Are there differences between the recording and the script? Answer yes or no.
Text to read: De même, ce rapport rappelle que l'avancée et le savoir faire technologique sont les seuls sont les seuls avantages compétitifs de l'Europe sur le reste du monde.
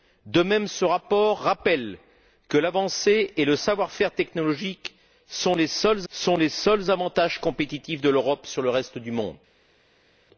no